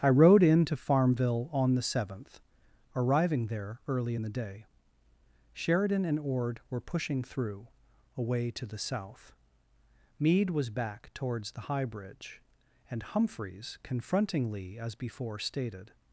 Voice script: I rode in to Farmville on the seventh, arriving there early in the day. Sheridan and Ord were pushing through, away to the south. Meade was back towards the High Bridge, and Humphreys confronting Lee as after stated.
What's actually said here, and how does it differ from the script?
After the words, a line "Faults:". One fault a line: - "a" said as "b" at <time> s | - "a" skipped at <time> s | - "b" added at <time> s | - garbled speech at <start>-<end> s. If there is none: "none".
I rode in to Farmville on the seventh, arriving there early in the day. Sheridan and Ord were pushing through, away to the south. Meade was back towards the High Bridge, and Humphreys confronting Lee as before stated.
Faults:
- "after" said as "before" at 15.0 s